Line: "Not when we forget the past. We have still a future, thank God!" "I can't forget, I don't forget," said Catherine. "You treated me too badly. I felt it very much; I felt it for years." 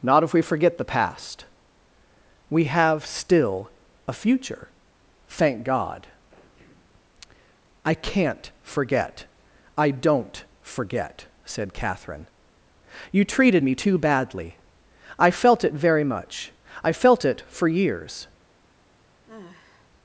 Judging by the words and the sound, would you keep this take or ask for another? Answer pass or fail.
fail